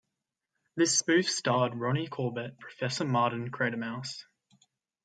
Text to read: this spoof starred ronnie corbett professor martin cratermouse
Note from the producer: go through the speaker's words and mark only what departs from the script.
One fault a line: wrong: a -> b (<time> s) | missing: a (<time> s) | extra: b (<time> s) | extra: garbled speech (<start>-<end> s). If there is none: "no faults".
no faults